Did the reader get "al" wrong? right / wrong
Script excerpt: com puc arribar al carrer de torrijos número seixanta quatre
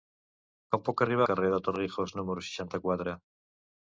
wrong